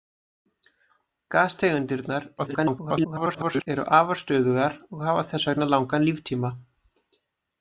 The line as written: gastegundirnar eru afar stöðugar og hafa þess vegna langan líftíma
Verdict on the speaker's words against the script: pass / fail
fail